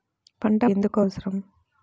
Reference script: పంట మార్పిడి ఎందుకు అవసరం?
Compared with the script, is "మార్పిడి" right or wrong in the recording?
wrong